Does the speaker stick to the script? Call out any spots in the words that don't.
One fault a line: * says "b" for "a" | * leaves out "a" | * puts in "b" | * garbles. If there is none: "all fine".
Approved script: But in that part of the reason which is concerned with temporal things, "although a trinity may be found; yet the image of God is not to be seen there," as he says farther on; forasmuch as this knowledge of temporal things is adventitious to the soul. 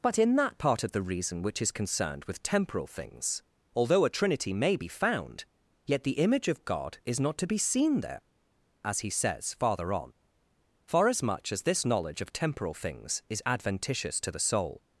all fine